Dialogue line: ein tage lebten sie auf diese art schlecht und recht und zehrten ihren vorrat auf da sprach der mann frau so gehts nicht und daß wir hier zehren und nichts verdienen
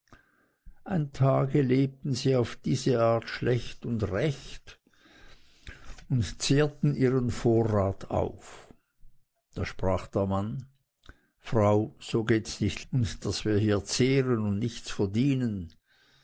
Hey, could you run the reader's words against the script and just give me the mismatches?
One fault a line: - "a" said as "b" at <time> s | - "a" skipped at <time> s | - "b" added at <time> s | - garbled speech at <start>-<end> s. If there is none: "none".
none